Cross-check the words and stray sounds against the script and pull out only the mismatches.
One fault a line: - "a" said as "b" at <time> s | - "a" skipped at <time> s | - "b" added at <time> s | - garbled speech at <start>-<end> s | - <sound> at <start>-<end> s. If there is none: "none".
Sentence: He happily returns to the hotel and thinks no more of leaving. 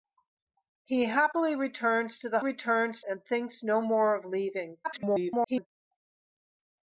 - "hotel" said as "returns" at 2.4 s
- garbled speech at 4.8-5.7 s